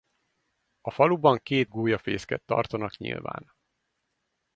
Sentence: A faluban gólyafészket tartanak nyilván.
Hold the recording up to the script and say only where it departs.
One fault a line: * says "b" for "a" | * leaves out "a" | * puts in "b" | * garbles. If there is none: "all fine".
* puts in "két"